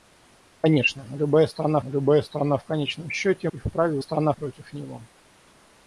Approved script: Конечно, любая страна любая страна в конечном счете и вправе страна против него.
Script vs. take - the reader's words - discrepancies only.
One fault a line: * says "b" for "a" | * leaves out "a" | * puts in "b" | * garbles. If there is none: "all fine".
all fine